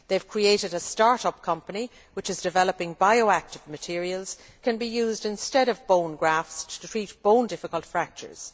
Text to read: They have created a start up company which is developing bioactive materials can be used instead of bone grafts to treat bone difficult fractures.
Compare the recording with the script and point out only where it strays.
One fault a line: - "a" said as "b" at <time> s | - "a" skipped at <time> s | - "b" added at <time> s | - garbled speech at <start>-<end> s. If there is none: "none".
none